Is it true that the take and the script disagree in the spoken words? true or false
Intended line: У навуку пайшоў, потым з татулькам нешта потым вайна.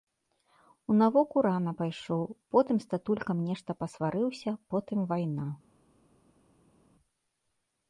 true